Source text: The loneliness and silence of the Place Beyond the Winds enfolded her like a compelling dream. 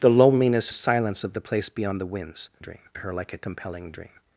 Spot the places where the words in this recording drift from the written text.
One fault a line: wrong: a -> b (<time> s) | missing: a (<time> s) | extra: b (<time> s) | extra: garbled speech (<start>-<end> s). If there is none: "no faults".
missing: and (0.7 s)
wrong: enfolded -> dream (2.6 s)